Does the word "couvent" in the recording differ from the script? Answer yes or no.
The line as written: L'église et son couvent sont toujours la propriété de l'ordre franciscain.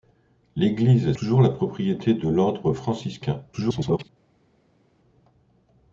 yes